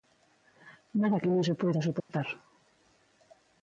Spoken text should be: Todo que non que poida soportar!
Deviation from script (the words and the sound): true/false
true